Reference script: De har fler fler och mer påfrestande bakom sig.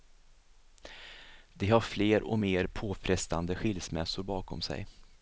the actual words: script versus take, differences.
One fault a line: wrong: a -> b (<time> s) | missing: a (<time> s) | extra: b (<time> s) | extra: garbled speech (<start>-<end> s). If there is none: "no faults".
missing: fler (2.2 s)
extra: skilsmässor (3.5 s)